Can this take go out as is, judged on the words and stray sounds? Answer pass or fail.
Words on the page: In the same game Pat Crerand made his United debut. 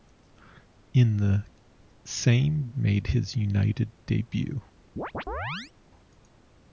fail